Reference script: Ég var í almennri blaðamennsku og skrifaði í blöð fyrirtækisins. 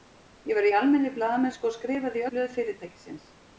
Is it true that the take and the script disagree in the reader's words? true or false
false